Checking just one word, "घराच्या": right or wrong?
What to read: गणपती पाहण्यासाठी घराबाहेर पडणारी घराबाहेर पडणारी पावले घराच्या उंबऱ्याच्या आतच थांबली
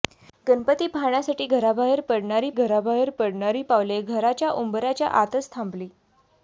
right